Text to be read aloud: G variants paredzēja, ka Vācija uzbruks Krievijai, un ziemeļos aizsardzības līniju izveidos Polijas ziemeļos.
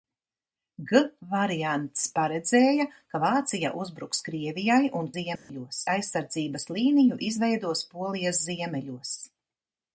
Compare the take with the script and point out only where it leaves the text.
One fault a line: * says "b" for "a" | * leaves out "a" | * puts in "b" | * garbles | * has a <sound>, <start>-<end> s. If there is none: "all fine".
* has a dropout, 5.4-5.5 s